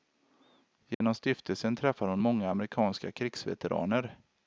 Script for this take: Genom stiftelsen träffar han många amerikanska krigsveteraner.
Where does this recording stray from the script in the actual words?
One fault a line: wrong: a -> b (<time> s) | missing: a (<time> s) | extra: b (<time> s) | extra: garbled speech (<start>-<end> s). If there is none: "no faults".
wrong: han -> hon (2.1 s)